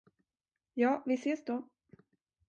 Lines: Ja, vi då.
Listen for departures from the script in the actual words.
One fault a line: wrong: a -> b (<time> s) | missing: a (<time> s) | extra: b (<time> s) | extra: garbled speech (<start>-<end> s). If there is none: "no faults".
extra: ses (1.1 s)